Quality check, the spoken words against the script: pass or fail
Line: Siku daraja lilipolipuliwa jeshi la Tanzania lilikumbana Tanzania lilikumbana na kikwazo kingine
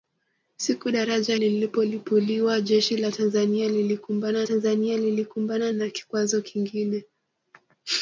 pass